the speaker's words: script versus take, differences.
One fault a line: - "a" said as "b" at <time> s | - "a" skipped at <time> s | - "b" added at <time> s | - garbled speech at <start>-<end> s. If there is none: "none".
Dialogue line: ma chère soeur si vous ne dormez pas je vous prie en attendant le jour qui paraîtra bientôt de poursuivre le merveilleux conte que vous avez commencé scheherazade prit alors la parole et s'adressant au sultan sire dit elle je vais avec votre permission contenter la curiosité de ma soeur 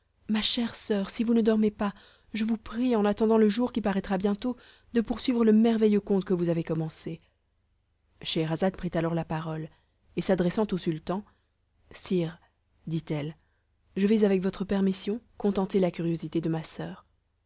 none